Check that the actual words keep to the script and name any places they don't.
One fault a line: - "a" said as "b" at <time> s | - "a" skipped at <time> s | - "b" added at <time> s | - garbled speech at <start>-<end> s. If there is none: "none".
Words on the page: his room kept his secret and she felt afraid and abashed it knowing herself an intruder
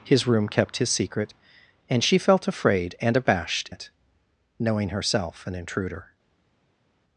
none